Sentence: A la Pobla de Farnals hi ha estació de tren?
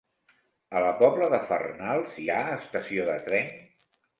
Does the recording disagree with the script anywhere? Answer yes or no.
no